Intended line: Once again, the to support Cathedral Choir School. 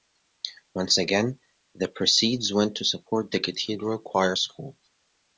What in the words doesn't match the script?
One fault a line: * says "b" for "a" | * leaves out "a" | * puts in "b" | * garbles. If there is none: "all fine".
* puts in "proceeds went"
* puts in "the"